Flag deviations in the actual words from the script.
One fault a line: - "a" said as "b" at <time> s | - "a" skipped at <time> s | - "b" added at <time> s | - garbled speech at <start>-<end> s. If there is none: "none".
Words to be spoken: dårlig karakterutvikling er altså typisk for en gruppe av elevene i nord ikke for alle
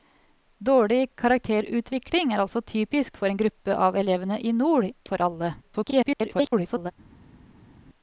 - "ikke" skipped at 4.9 s
- garbled speech at 5.6-6.9 s